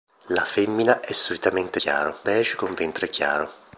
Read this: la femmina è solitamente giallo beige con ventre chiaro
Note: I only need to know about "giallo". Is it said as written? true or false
false